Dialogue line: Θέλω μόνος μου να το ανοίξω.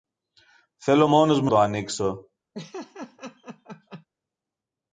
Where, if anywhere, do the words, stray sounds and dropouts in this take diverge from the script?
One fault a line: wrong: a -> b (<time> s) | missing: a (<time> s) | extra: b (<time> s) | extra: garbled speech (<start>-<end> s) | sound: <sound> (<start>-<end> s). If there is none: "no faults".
missing: να (1.5 s)
sound: laugh (2.5-4.1 s)